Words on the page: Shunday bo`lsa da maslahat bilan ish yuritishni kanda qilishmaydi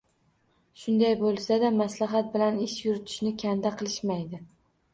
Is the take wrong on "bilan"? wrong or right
right